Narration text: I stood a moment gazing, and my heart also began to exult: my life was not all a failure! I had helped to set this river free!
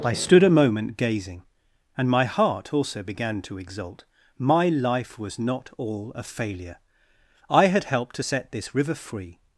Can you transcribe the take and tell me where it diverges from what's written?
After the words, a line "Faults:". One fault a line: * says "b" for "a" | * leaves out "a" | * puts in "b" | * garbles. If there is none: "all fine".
I stood a moment gazing, and my heart also began to exult: my life was not all a failure! I had helped to set this river free!
Faults:
all fine